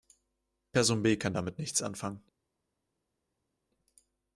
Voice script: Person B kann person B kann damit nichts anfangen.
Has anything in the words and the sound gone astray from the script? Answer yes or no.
yes